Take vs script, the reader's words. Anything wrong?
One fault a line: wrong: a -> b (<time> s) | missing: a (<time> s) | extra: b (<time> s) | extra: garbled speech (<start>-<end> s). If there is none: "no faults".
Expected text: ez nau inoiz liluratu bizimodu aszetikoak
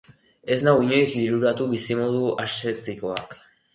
no faults